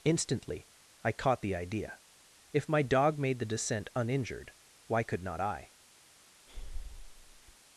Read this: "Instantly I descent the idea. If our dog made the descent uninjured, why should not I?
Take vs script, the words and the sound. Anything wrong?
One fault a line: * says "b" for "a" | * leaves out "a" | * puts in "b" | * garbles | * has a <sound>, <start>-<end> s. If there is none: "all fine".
* says "caught" for "descent"
* says "my" for "our"
* says "could" for "should"
* has a breath, 6.5-7.6 s